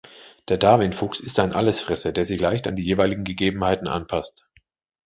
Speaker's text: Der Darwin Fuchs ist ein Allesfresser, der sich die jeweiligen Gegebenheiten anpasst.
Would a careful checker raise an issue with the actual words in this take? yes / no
yes